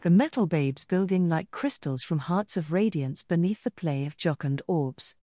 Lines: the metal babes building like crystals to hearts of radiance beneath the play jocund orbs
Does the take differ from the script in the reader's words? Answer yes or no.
yes